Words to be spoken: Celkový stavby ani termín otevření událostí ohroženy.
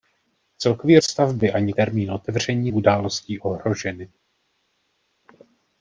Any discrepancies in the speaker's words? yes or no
no